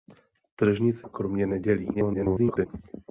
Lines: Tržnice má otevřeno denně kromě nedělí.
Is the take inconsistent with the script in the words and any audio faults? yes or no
yes